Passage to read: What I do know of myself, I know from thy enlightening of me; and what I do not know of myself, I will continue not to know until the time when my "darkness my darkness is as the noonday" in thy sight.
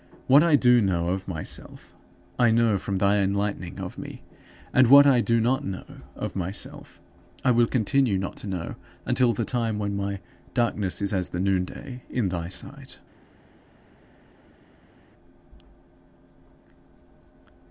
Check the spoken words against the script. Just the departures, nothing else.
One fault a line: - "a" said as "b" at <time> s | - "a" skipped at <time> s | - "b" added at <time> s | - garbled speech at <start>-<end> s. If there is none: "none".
- "my darkness" skipped at 11.0 s